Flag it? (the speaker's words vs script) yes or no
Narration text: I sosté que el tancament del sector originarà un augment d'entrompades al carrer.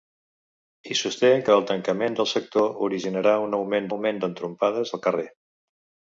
yes